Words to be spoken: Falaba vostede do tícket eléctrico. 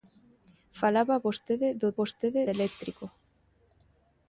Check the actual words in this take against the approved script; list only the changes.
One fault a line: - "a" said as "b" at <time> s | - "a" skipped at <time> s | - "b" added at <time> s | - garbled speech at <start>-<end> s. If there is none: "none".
- "tícket" said as "vostede" at 2.0 s